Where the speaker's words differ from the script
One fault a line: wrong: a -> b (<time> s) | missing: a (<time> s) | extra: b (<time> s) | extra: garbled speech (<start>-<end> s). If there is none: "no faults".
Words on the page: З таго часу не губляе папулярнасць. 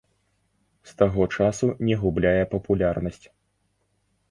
no faults